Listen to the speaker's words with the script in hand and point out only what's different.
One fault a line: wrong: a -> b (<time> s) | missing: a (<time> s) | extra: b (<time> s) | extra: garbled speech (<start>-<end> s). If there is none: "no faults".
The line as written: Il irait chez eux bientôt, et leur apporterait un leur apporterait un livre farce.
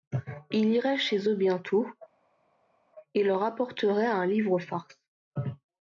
missing: leur apporterait un (4.2 s)